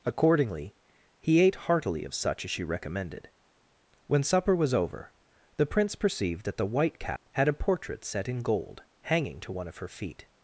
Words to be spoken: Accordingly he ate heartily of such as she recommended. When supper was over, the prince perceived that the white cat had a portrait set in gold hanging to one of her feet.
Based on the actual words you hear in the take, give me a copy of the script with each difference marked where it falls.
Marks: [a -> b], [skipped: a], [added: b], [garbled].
Accordingly he ate heartily of such as she recommended. When supper was over, the prince perceived that the white cat had a portrait set in gold hanging to one of her feet.